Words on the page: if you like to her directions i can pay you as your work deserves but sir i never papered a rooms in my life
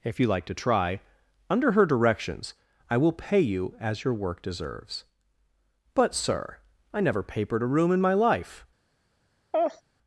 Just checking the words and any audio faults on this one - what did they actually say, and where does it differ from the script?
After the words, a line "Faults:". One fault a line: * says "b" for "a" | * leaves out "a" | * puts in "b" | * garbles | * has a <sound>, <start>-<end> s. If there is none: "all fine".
if you like to try under her directions i will pay you as your work deserves but sir i never papered a room in my life
Faults:
* puts in "try under"
* says "will" for "can"
* says "room" for "rooms"
* has a laugh, 9.5-9.8 s